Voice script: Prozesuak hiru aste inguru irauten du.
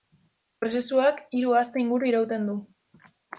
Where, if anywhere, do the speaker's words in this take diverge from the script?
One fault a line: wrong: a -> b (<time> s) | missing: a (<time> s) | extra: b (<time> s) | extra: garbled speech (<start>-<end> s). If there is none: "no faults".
no faults